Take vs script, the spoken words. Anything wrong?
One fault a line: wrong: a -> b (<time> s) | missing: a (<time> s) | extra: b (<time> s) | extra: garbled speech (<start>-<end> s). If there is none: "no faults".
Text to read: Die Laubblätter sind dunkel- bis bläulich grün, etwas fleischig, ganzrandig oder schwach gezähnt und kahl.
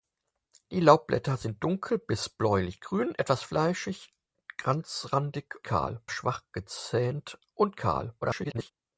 wrong: oder -> kahl (5.6 s)
extra: garbled speech (8.2-8.7 s)